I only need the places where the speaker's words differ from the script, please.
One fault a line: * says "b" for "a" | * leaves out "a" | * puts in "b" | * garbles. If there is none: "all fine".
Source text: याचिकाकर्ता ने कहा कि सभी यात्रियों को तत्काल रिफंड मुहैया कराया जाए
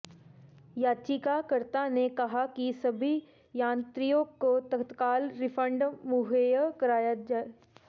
all fine